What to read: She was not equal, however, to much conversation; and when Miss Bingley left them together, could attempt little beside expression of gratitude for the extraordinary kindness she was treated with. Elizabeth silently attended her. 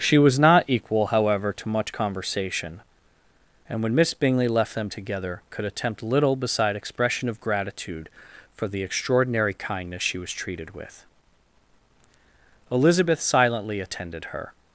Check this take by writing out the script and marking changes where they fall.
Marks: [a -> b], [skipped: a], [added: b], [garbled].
She was not equal, however, to much conversation; and when Miss Bingley left them together, could attempt little beside expression of gratitude for the extraordinary kindness she was treated with. Elizabeth silently attended her.